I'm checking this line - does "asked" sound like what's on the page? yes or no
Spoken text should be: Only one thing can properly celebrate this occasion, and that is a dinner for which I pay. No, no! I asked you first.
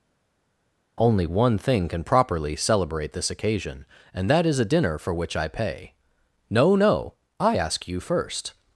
no